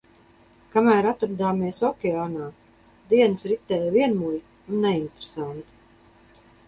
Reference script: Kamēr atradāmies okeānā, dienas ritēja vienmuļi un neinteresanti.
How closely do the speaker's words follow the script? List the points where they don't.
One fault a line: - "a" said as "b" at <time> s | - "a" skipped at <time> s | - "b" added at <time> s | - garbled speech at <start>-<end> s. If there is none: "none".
none